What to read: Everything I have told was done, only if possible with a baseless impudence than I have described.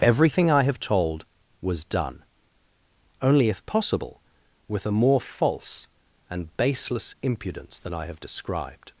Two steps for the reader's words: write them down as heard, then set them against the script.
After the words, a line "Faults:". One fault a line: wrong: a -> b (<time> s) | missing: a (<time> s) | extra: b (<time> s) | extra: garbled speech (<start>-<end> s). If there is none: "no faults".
Everything I have told was done, only if possible with a more false and baseless impudence than I have described.
Faults:
extra: more false and (4.9 s)